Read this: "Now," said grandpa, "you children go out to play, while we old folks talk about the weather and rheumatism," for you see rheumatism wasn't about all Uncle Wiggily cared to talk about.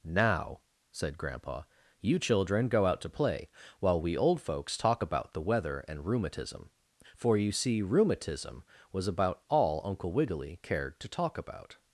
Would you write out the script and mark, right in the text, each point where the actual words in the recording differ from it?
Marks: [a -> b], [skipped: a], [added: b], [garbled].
"Now," said grandpa, "you children go out to play, while we old folks talk about the weather and rheumatism," for you see rheumatism [wasn't -> was] about all Uncle Wiggily cared to talk about.